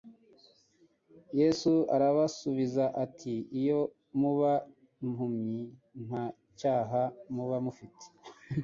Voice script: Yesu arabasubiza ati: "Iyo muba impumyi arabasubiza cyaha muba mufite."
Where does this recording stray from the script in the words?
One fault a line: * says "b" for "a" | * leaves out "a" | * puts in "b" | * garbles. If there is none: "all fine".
* says "nta" for "arabasubiza"